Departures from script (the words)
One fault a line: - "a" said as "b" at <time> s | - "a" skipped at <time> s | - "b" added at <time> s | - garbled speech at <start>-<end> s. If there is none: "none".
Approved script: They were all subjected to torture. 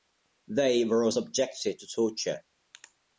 none